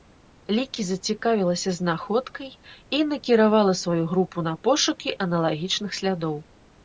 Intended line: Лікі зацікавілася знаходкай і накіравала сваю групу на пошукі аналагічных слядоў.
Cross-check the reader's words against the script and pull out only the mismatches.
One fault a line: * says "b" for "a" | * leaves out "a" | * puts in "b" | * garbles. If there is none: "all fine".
all fine